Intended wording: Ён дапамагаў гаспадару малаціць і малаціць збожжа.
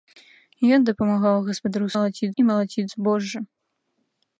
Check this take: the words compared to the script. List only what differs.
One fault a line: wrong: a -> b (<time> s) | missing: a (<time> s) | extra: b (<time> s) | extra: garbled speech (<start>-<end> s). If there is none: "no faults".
no faults